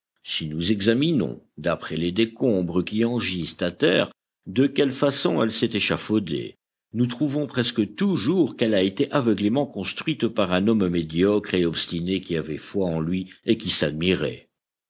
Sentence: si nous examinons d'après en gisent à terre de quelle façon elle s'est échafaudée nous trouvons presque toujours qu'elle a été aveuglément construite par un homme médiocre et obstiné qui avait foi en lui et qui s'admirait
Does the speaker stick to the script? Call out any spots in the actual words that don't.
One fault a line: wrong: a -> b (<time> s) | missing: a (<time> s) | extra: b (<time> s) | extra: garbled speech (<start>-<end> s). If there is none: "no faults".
extra: les décombres qui (1.9 s)